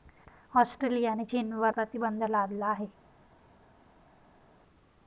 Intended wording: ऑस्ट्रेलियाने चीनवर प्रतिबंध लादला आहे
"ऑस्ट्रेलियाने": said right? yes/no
yes